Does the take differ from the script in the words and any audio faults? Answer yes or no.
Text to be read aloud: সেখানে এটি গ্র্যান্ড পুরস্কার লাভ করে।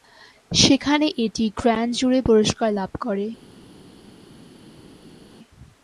yes